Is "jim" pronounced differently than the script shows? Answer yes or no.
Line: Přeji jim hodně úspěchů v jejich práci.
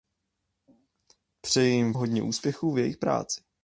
no